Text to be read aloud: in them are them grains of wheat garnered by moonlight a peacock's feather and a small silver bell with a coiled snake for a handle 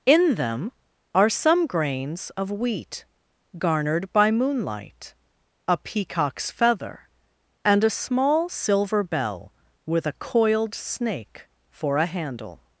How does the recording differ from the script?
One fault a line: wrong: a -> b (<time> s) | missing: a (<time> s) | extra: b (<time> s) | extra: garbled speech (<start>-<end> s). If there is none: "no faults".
wrong: them -> some (1.3 s)